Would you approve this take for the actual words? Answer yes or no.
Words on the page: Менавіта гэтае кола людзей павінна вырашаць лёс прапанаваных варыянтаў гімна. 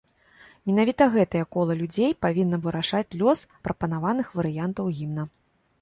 yes